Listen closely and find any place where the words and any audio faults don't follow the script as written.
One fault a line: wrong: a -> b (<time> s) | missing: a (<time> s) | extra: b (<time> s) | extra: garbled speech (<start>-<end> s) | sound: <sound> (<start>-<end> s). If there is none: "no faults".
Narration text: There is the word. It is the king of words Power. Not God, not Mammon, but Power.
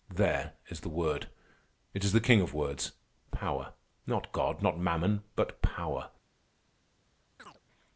sound: chirp (7.4-7.6 s)